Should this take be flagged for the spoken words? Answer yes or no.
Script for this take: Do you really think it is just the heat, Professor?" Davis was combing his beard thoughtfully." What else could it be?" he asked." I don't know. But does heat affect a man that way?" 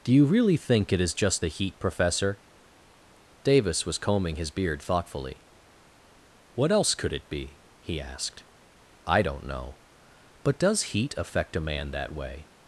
no